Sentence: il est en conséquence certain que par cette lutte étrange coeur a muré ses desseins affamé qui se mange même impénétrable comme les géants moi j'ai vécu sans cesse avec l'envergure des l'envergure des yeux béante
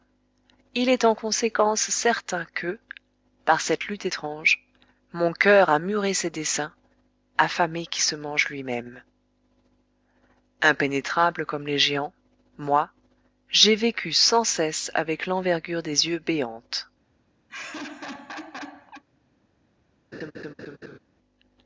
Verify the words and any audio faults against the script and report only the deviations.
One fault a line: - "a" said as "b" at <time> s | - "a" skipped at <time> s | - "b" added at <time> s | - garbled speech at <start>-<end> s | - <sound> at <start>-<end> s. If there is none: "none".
- "mon" added at 5.1 s
- "lui" added at 8.5 s
- "l'envergure des" skipped at 16.1 s
- laugh at 17.5-19.0 s
- laugh at 20.1-21.0 s